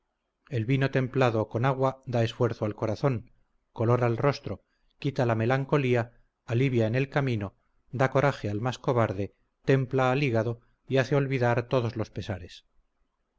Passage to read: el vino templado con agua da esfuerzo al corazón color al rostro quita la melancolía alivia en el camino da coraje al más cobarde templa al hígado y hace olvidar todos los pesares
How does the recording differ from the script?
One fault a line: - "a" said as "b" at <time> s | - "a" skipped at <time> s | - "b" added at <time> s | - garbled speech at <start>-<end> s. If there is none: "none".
none